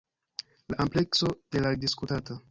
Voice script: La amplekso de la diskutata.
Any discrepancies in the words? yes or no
no